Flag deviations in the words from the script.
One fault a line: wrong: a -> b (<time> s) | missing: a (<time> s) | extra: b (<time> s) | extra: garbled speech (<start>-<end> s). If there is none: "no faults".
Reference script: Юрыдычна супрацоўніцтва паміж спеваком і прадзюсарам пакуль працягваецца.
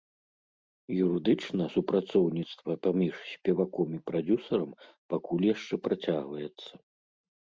extra: яшчэ (5.5 s)